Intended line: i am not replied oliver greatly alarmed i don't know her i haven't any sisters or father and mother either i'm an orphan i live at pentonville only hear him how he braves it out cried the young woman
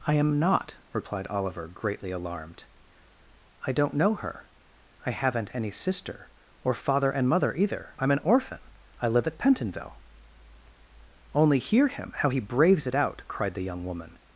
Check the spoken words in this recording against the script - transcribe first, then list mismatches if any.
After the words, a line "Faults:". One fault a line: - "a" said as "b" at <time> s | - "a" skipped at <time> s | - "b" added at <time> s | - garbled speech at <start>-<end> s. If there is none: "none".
i am not replied oliver greatly alarmed i don't know her i haven't any sister or father and mother either i'm an orphan i live at pentonville only hear him how he braves it out cried the young woman
Faults:
- "sisters" said as "sister" at 5.7 s